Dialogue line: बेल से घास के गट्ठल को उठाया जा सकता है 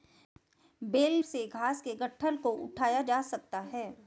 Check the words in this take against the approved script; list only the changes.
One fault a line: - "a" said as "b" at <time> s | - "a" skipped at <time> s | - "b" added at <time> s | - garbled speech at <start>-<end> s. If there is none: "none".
none